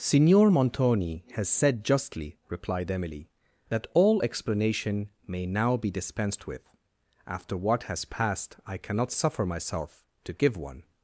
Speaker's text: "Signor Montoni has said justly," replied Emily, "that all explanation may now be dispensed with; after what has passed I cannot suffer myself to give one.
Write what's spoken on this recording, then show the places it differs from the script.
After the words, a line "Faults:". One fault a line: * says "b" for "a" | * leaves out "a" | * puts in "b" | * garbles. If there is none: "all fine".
"Signor Montoni has said justly," replied Emily, "that all explanation may now be dispensed with; after what has passed I cannot suffer myself to give one.
Faults:
all fine